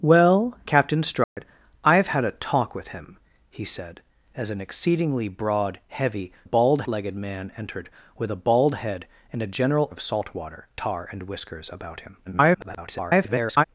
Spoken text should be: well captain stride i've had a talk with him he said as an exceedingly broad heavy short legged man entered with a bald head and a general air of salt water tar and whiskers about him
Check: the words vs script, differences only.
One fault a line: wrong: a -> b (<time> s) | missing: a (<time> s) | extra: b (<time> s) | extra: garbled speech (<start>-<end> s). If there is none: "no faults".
wrong: short -> bald (6.4 s)
missing: air (9.9 s)
extra: garbled speech (12.3-13.6 s)